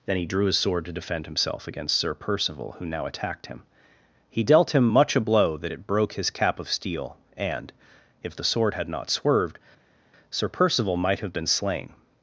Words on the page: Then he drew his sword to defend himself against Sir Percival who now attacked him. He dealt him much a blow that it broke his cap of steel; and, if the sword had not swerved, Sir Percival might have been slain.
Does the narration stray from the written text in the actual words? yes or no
no